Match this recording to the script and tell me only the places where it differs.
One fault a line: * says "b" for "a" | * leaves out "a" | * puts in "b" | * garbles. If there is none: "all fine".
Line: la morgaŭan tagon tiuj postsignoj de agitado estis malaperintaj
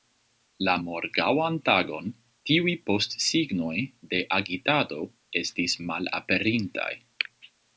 all fine